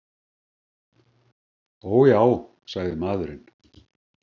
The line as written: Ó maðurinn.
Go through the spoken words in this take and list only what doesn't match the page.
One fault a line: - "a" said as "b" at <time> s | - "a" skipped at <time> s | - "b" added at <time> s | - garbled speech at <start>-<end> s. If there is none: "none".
- "já sagði" added at 2.1 s